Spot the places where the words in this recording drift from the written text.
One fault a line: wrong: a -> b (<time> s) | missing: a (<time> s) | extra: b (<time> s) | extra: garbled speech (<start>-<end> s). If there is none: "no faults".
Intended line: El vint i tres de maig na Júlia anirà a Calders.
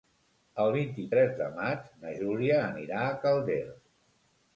no faults